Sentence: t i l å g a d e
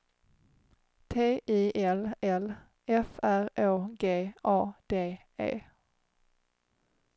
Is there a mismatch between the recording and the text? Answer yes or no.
yes